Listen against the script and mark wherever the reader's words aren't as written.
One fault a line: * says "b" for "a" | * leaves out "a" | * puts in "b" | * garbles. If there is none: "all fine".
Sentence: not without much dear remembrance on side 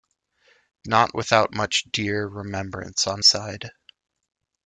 all fine